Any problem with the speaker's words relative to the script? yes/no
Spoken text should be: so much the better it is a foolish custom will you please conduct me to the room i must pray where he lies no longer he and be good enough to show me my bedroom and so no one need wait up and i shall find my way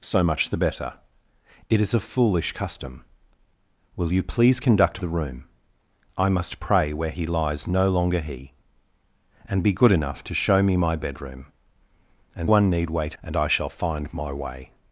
yes